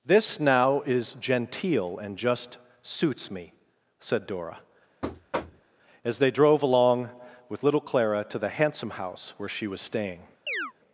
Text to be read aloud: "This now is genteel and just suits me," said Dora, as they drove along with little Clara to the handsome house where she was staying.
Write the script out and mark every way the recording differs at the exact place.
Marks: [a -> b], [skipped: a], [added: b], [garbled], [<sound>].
"This now is genteel and just suits me," said Dora, [thud] as they drove along with little Clara to the handsome house where she was staying. [chirp]